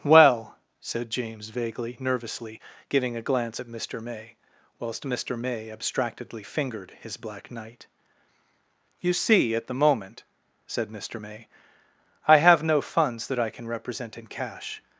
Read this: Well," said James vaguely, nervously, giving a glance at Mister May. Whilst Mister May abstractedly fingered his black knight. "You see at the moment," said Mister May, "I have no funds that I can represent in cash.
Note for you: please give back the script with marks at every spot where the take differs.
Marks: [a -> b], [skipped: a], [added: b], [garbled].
Well," said James vaguely, nervously, giving a glance at Mister May. Whilst Mister May abstractedly fingered his black knight. "You see at the moment," said Mister May, "I have no funds that I can represent in cash.